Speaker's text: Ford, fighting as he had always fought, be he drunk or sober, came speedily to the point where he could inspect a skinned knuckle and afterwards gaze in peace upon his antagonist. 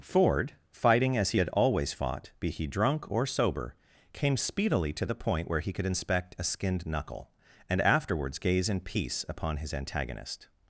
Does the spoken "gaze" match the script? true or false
true